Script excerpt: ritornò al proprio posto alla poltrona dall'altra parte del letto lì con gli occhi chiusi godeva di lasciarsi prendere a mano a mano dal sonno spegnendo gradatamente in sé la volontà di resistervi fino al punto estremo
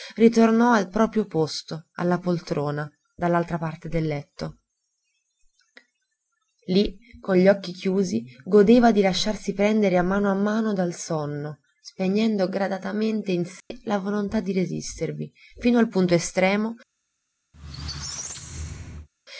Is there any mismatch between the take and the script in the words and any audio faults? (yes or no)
yes